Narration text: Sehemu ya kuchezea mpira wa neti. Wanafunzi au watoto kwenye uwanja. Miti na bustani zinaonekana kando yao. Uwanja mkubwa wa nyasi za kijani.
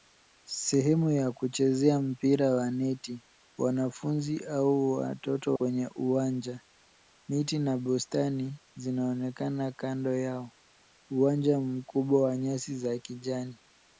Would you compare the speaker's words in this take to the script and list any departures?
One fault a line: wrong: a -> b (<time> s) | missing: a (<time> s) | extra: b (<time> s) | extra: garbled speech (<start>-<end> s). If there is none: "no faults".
no faults